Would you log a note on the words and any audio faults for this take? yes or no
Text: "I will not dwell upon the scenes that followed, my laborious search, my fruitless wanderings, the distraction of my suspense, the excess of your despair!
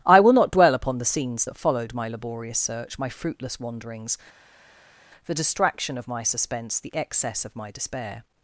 yes